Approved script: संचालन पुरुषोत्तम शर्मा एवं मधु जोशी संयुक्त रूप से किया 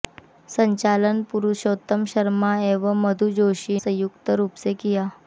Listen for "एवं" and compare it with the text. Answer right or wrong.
right